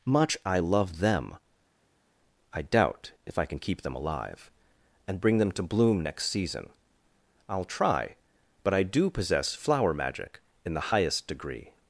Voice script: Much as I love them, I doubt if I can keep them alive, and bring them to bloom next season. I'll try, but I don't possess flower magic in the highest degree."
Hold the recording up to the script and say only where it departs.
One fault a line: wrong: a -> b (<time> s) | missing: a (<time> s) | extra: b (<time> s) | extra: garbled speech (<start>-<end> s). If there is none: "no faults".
missing: as (0.4 s)
wrong: don't -> do (8.8 s)